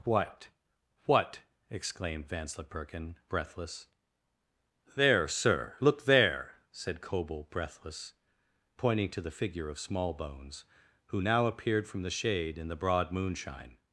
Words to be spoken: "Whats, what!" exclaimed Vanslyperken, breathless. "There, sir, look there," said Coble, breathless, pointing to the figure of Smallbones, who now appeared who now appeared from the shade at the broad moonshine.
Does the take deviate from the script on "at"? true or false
true